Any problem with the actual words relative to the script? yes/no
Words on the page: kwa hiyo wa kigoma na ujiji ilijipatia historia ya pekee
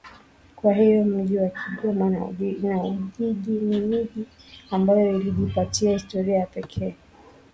yes